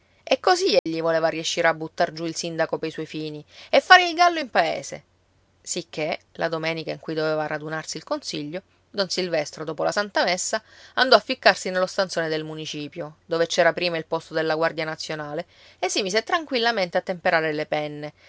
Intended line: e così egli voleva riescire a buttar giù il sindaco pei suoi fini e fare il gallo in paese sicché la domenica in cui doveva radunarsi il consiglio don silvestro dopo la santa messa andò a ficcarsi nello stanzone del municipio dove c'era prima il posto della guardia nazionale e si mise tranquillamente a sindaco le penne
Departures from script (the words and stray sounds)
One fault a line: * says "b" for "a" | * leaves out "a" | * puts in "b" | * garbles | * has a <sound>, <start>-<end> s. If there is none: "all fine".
* has a dropout, 0.8-0.9 s
* says "temperare" for "sindaco"